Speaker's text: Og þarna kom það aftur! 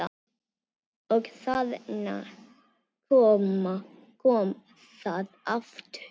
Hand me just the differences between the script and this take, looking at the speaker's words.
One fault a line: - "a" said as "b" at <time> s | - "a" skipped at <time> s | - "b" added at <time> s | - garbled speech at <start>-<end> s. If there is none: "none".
none